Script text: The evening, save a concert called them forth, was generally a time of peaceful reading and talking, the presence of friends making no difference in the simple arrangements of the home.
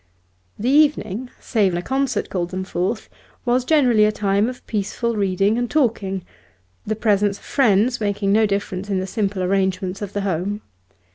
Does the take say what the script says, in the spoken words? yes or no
yes